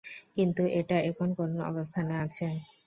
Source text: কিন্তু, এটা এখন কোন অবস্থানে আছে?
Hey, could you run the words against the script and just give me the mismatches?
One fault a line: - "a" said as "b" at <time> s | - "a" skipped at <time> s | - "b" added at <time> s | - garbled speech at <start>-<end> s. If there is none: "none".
none